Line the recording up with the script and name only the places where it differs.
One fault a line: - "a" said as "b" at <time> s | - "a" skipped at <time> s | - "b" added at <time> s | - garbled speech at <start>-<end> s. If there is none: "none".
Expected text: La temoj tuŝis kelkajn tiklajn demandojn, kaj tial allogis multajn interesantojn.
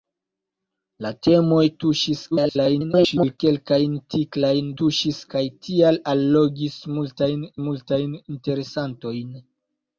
- garbled speech at 2.3-3.4 s
- "demandojn" said as "tuŝis" at 4.8 s
- "multajn" added at 7.7 s